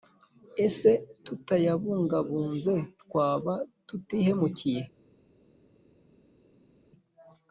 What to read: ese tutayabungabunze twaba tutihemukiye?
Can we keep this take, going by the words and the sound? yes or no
yes